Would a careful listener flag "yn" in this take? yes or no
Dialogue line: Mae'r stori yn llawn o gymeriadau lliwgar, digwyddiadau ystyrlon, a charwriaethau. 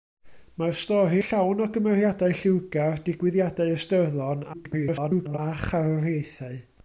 yes